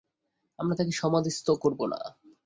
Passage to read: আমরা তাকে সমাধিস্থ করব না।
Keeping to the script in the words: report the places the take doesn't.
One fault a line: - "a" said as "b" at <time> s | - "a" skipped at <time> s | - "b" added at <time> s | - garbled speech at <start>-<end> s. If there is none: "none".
none